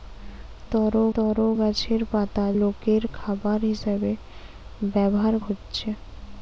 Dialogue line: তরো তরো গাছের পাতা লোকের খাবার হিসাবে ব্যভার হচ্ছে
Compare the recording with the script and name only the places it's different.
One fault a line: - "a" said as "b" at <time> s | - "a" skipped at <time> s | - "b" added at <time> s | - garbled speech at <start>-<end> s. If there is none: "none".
none